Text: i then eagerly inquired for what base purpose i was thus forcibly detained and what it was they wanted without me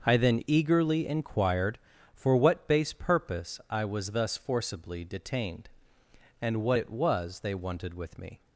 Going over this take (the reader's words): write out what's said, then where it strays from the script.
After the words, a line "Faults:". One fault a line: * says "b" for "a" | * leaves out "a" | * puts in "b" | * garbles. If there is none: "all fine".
i then eagerly inquired for what base purpose i was thus forcibly detained and what it was they wanted with me
Faults:
* says "with" for "without"